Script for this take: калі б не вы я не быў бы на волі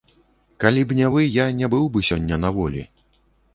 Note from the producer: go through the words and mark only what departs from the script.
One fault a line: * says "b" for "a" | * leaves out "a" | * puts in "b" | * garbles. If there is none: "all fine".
* puts in "сёння"